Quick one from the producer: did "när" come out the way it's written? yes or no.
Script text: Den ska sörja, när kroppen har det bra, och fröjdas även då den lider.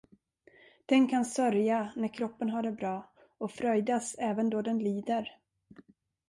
yes